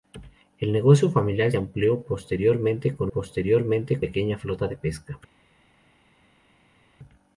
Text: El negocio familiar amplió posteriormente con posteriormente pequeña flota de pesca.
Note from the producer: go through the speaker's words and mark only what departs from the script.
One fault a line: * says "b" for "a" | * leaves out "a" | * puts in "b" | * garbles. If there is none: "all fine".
all fine